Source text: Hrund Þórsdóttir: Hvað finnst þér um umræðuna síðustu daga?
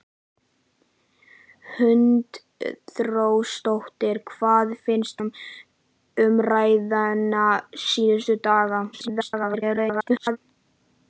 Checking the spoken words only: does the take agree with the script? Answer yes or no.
no